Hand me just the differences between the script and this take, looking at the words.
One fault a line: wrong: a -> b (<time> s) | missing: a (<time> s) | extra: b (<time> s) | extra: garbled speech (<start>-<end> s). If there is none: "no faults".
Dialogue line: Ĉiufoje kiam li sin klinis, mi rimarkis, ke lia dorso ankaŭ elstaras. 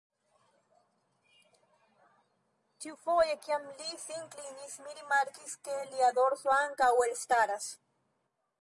no faults